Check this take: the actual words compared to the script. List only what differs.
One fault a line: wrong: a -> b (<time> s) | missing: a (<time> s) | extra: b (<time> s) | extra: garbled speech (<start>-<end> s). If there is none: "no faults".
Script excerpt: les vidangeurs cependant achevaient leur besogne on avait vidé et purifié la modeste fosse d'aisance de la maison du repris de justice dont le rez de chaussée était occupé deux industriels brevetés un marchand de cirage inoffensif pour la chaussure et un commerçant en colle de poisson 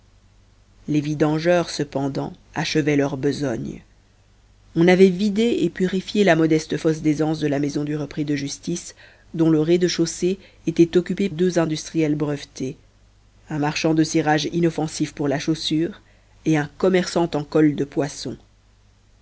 no faults